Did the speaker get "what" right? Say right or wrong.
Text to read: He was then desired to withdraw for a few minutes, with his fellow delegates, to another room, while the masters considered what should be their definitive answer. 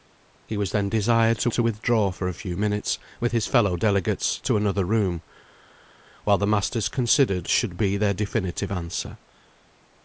wrong